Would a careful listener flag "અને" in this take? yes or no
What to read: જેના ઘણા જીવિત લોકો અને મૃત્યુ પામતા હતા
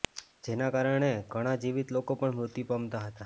yes